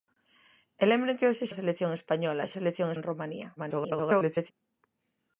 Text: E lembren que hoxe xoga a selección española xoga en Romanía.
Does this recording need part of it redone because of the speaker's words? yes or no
yes